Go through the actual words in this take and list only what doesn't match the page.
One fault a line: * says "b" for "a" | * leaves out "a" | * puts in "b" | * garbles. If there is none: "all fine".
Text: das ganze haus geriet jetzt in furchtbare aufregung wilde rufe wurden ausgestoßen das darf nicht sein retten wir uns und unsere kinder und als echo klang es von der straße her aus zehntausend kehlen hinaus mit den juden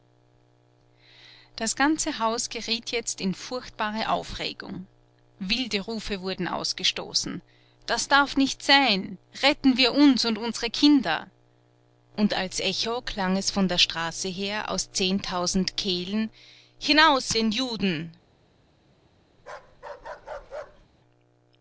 * leaves out "mit"